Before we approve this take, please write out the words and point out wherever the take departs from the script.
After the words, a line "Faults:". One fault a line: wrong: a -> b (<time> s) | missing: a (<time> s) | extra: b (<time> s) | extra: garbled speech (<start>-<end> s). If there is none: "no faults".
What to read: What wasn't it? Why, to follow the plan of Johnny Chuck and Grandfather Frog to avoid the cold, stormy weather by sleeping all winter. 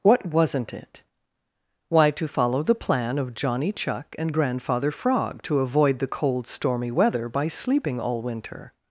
What wasn't it? Why, to follow the plan of Johnny Chuck and Grandfather Frog to avoid the cold, stormy weather by sleeping all winter.
Faults:
no faults